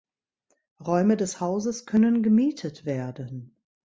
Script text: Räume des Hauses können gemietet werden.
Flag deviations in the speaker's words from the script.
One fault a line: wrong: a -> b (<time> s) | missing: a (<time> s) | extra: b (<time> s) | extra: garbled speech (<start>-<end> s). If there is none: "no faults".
no faults